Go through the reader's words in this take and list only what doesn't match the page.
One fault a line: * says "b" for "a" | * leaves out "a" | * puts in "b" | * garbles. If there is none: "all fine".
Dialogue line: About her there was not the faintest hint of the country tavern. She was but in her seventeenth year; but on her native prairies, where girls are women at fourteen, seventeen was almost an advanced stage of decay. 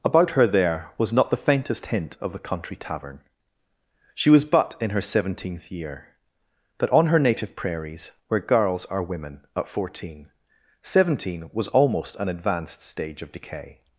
all fine